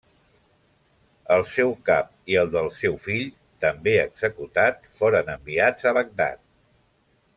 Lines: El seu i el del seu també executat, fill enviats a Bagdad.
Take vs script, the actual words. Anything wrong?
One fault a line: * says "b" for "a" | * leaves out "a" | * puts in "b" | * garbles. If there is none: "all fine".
* puts in "cap"
* puts in "fill"
* says "foren" for "fill"